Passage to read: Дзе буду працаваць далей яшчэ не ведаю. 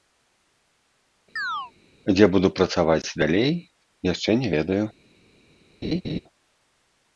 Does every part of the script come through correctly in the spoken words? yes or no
yes